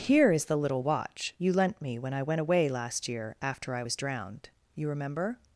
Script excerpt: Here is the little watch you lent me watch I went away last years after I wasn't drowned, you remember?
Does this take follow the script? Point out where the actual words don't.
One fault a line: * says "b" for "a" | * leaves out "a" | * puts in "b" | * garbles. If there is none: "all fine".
* says "when" for "watch"
* says "year" for "years"
* says "was" for "wasn't"